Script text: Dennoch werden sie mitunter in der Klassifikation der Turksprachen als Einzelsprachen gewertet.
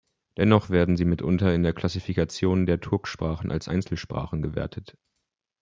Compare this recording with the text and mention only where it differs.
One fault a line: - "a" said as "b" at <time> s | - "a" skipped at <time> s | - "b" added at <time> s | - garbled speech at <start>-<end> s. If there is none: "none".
none